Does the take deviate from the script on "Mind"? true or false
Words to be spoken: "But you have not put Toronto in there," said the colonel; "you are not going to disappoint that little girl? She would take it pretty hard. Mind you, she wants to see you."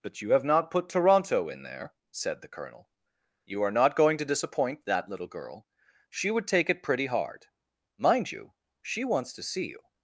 false